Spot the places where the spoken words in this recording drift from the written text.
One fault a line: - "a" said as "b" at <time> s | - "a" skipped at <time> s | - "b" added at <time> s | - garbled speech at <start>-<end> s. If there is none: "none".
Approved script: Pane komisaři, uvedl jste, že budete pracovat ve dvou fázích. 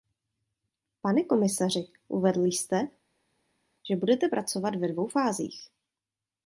none